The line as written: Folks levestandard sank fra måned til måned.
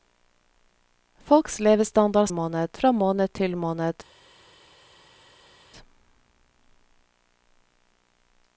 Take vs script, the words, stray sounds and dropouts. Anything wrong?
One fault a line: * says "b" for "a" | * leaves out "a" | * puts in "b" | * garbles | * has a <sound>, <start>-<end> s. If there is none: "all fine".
* says "måned" for "sank"